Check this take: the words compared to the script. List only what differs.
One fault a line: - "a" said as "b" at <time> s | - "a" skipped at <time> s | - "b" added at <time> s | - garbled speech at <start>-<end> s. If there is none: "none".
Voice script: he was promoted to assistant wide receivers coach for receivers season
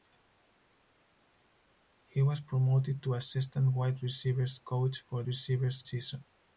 none